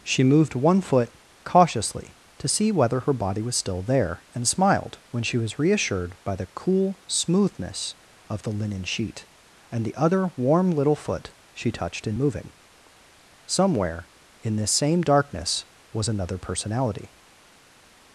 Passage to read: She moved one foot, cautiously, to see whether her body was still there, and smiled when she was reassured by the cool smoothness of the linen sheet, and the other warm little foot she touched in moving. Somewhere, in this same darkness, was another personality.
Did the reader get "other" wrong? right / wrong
right